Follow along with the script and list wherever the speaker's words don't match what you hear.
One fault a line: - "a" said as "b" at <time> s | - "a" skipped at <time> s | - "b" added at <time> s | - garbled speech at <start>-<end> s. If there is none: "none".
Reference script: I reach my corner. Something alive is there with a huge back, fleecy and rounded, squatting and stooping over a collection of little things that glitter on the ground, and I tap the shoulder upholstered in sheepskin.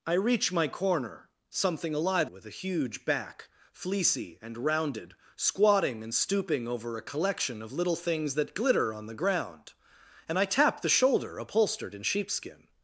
- "is there" skipped at 2.3 s